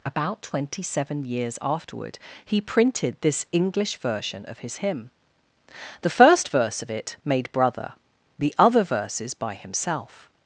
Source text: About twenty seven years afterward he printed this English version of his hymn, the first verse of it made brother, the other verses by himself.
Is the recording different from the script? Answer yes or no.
no